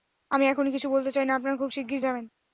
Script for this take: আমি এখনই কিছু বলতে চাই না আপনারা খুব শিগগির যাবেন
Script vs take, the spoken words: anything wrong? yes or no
no